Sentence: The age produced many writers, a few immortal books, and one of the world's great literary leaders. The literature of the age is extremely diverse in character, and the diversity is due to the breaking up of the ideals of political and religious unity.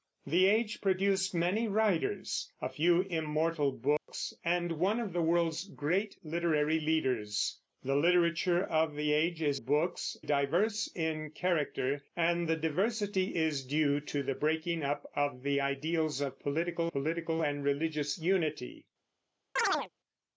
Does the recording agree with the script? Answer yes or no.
no